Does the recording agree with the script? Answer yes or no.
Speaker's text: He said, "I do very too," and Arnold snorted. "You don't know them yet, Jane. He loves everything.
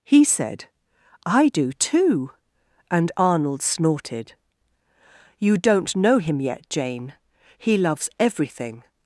no